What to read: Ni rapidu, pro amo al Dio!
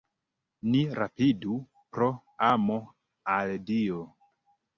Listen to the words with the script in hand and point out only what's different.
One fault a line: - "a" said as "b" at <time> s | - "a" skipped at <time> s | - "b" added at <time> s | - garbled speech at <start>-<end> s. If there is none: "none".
none